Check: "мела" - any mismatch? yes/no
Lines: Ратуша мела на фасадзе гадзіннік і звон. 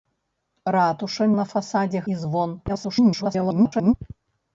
yes